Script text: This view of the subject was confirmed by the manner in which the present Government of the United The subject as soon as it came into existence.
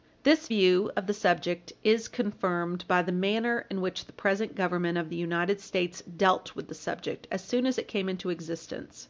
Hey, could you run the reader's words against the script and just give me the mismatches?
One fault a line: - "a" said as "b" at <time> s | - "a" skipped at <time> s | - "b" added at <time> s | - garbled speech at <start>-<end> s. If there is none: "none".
- "was" said as "is" at 1.8 s
- "States dealt with" added at 5.6 s